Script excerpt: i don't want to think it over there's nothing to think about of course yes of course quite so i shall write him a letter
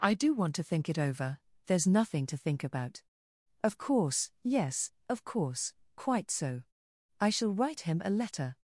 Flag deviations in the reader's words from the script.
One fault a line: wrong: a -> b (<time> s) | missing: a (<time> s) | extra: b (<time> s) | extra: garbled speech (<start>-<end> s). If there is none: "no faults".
wrong: don't -> do (0.1 s)